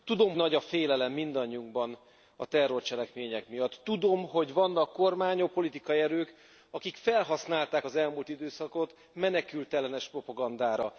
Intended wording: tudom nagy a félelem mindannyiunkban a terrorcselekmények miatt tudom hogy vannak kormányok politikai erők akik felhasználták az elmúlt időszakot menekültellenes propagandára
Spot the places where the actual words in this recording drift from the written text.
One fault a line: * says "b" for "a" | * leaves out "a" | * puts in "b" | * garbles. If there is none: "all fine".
all fine